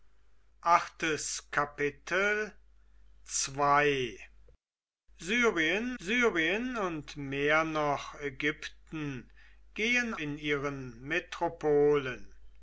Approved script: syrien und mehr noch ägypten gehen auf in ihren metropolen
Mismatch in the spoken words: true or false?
true